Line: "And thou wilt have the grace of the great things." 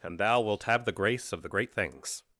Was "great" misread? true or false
false